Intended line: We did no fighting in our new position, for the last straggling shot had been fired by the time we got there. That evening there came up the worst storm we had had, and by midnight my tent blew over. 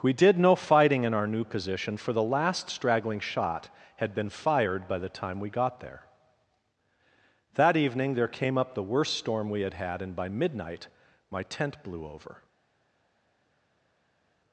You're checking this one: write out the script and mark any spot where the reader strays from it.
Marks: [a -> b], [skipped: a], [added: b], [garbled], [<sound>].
We did no fighting in our new position, for the last straggling shot had been fired by the time we got there. That evening there came up the worst storm we had had, and by midnight my tent blew over.